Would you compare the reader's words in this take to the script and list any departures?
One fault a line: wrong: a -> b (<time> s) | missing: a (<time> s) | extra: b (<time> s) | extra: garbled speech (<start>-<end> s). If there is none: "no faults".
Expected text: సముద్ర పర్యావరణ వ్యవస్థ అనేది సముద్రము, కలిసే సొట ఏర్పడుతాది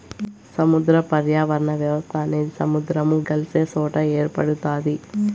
no faults